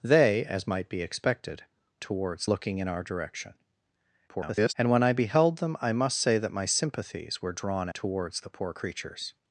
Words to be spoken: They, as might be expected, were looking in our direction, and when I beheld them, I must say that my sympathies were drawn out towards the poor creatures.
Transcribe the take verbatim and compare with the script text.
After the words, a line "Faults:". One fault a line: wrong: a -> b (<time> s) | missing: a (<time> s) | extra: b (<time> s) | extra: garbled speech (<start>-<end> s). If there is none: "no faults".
They, as might be expected, towards looking in our direction, [garbled] and when I beheld them, I must say that my sympathies were drawn towards the poor creatures.
Faults:
wrong: were -> towards (2.0 s)
extra: garbled speech (4.3-4.7 s)
missing: out (7.9 s)